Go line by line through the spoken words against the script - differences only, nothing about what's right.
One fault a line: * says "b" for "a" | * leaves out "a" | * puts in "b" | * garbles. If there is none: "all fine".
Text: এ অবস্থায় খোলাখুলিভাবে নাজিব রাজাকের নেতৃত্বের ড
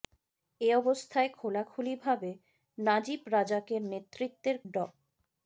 all fine